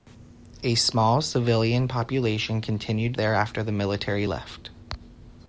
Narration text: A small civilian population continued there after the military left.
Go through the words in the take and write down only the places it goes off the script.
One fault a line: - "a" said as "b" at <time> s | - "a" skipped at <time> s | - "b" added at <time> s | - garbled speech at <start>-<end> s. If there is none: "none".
none